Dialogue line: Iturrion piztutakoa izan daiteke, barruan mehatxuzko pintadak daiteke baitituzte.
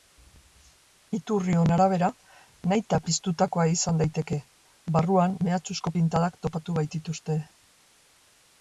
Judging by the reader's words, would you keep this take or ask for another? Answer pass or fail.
fail